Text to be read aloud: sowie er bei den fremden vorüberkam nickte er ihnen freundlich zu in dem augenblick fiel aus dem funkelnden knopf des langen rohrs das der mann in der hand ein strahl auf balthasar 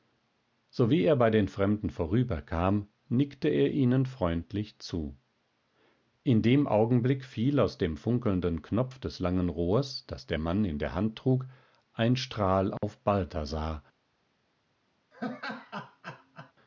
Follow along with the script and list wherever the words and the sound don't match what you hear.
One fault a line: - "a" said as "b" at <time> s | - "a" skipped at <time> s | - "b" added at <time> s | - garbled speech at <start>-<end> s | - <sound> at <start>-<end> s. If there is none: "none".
- "trug" added at 11.2 s
- dropout at 12.8-12.8 s
- laugh at 15.1-16.5 s